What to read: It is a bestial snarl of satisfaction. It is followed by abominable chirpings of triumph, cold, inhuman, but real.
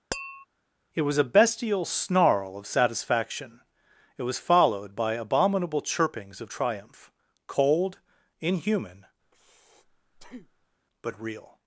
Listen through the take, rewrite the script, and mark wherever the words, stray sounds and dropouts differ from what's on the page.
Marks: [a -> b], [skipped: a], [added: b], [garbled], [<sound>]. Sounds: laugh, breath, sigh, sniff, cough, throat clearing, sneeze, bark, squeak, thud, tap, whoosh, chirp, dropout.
[tap] It [is -> was] a bestial snarl of satisfaction. It [is -> was] followed by abominable chirpings of triumph, cold, inhuman, [breath] but real.